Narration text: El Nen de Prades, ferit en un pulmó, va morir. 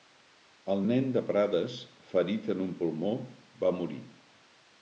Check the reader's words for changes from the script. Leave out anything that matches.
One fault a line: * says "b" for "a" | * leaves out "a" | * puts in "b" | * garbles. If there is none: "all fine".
all fine